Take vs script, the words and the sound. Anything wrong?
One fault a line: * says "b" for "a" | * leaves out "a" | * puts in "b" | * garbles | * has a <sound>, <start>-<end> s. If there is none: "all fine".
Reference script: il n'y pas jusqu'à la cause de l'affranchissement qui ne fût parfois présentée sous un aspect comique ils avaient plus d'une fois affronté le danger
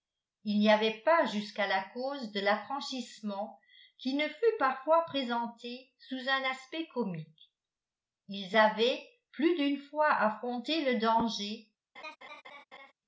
* puts in "avait"
* has a laugh, 12.0-12.9 s